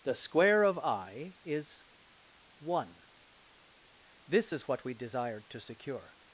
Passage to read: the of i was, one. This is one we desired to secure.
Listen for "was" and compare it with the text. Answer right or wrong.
wrong